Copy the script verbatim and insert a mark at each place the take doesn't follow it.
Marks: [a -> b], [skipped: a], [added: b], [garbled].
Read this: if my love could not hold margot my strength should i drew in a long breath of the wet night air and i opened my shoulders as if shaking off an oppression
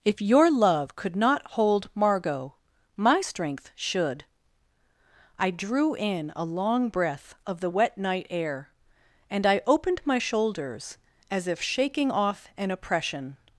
if [my -> your] love could not hold margot my strength should i drew in a long breath of the wet night air and i opened my shoulders as if shaking off an oppression